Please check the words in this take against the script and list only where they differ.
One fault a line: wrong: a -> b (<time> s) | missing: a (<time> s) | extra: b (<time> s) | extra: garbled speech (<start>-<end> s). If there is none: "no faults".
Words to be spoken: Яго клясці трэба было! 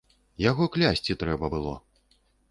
no faults